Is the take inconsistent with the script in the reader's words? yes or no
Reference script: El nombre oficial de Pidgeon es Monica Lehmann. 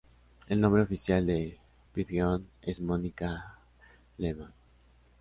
no